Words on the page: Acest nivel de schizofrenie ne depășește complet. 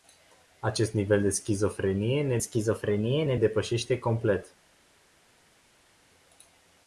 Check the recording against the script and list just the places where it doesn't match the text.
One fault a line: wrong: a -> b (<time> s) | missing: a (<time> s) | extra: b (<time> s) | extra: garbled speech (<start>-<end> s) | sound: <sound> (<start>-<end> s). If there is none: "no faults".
extra: schizofrenie ne (2.4 s)